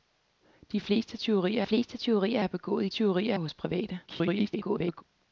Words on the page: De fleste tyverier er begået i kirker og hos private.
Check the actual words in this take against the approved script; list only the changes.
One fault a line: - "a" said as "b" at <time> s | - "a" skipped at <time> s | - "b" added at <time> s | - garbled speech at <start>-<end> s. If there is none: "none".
- "fleste tyverier" added at 1.6 s
- "kirker" said as "tyverier" at 2.9 s
- garbled speech at 4.1-5.0 s